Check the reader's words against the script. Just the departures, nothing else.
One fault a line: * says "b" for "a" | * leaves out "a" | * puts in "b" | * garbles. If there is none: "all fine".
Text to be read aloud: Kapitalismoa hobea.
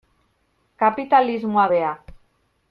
all fine